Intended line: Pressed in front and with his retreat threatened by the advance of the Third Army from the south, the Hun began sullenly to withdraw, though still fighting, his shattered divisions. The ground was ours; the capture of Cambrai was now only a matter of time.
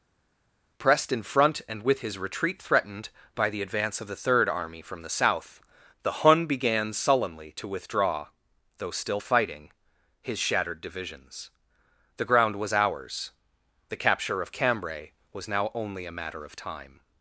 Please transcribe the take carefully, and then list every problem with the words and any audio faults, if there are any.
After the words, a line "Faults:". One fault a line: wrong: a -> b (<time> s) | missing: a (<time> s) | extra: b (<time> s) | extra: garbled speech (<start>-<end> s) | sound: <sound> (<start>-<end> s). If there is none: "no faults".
Pressed in front and with his retreat threatened by the advance of the Third Army from the south, the Hun began sullenly to withdraw, though still fighting, his shattered divisions. The ground was ours; the capture of Cambrai was now only a matter of time.
Faults:
no faults